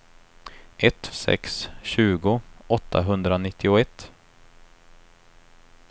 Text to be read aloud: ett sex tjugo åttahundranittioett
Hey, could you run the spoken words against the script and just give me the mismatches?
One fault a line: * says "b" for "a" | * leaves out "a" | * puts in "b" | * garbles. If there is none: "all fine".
all fine